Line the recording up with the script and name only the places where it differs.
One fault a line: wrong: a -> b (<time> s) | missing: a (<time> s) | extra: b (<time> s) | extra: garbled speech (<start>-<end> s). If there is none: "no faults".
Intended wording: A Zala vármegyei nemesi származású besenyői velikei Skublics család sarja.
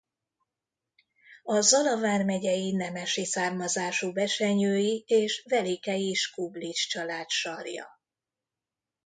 extra: és (5.1 s)